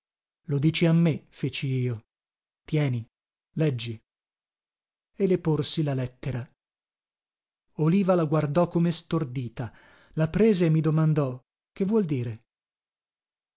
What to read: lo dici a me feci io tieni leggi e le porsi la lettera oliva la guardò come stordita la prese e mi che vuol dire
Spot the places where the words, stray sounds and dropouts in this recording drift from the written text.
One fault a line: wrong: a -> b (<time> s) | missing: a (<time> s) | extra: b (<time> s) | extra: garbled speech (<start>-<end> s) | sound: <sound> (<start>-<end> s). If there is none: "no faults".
extra: domandò (10.8 s)